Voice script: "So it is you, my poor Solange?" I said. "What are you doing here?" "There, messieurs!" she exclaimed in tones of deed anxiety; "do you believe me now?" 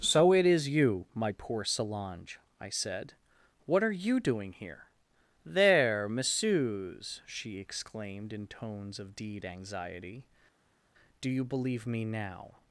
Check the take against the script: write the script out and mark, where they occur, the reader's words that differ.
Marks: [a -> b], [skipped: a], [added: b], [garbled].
"So it is you, my poor Solange?" I said. "What are you doing here?" "There, messieurs!" she exclaimed in tones of deed anxiety; "do you believe me now?"